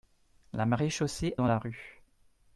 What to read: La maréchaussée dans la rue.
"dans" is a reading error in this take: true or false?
false